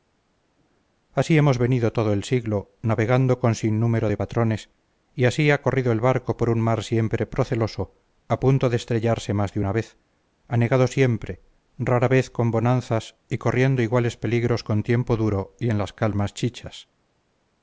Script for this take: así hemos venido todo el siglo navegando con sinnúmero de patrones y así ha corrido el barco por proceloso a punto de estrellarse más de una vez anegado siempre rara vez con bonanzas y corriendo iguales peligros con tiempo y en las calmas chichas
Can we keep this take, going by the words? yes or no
no